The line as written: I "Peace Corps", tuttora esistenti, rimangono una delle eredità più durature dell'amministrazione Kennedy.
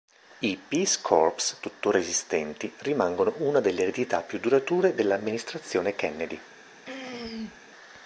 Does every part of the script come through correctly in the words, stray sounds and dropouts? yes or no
no